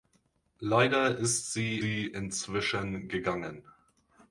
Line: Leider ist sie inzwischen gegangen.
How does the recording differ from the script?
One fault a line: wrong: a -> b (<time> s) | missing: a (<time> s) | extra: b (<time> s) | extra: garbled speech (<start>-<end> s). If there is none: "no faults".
extra: sie (1.8 s)